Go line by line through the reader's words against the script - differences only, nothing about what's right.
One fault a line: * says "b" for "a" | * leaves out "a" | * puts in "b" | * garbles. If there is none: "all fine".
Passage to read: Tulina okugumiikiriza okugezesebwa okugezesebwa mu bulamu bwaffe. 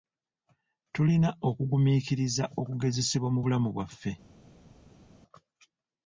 * leaves out "okugezesebwa"